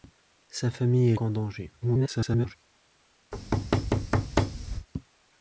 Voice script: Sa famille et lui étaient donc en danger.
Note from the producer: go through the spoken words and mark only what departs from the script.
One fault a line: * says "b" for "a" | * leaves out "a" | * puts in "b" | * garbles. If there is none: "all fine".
* leaves out "lui étaient donc"
* garbles